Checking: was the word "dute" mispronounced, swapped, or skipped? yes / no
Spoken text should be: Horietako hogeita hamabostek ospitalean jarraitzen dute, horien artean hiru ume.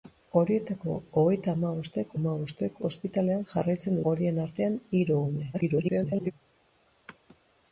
yes